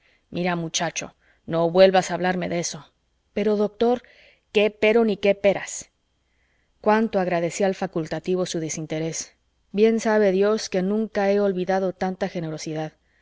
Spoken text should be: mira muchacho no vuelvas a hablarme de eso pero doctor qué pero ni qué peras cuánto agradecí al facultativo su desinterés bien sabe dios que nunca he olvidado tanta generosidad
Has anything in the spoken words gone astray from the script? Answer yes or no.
no